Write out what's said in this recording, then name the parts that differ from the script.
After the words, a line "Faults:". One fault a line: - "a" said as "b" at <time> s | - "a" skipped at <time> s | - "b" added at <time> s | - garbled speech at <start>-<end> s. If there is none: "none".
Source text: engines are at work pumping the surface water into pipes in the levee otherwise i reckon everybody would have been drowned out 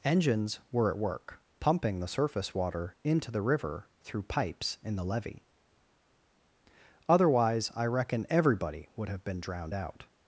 engines were at work pumping the surface water into the river through pipes in the levee otherwise i reckon everybody would have been drowned out
Faults:
- "are" said as "were" at 0.7 s
- "the river through" added at 3.3 s